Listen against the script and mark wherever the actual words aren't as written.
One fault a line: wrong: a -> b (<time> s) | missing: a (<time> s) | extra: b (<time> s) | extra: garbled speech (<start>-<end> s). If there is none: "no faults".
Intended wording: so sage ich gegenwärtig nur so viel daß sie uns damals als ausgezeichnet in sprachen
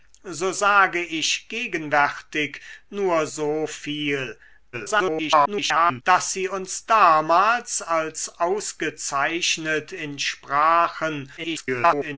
extra: garbled speech (4.7-6.0 s)
extra: garbled speech (11.4-12.2 s)